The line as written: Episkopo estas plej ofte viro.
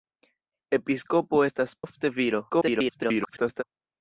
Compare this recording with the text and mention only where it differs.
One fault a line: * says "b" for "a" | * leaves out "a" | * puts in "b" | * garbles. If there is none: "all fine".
* leaves out "plej"
* garbles